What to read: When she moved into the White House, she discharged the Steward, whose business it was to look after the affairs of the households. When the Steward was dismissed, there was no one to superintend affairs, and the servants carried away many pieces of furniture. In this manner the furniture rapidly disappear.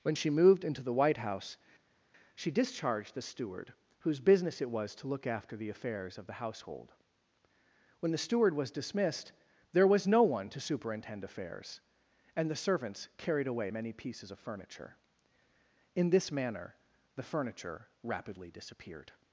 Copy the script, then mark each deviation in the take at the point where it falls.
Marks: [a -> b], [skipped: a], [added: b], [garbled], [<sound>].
When she moved into the White House, she discharged the Steward, whose business it was to look after the affairs of the [households. -> household] When the Steward was dismissed, there was no one to superintend affairs, and the servants carried away many pieces of furniture. In this manner the furniture rapidly [disappear. -> disappeared]